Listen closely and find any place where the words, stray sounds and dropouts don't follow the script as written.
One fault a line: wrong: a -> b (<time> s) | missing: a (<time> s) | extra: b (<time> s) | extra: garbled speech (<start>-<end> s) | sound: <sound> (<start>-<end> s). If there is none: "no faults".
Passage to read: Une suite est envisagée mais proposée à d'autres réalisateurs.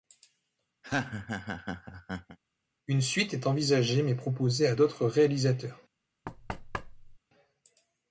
sound: laugh (0.8-2.4 s)
sound: thud (6.2-7.2 s)